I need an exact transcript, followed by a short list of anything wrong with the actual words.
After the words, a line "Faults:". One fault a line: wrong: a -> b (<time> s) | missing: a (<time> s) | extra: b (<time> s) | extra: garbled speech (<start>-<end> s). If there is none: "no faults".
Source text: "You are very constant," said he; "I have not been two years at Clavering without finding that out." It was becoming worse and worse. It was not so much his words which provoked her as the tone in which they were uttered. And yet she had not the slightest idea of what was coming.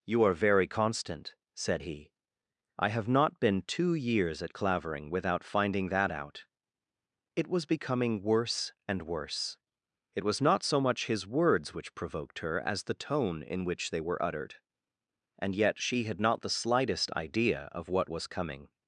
"You are very constant," said he; "I have not been two years at Clavering without finding that out." It was becoming worse and worse. It was not so much his words which provoked her as the tone in which they were uttered. And yet she had not the slightest idea of what was coming.
Faults:
no faults